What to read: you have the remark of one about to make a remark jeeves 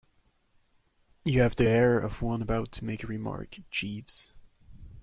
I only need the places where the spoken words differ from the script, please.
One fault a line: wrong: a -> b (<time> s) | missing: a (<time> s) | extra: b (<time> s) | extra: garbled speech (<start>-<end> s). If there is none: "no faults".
wrong: remark -> air (1.6 s)